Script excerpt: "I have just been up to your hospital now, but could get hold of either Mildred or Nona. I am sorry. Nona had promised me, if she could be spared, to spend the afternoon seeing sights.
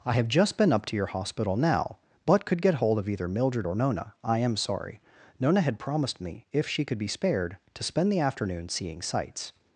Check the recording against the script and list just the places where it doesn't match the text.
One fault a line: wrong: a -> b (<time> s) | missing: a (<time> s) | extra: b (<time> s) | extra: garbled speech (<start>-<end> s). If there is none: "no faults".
no faults